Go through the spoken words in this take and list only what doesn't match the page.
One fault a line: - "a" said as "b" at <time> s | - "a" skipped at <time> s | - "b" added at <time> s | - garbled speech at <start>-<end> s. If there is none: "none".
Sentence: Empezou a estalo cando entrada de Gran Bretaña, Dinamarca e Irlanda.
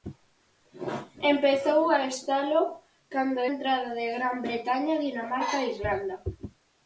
none